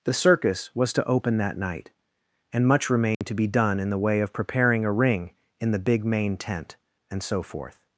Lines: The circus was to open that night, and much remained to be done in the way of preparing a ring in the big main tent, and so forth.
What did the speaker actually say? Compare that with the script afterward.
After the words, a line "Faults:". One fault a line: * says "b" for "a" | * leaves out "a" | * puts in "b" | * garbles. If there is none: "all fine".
The circus was to open that night, and much remained to be done in the way of preparing a ring in the big main tent, and so forth.
Faults:
all fine